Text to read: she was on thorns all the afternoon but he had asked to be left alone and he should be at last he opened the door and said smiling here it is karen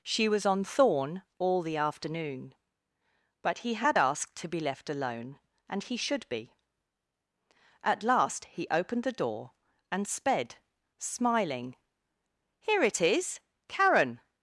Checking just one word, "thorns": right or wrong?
wrong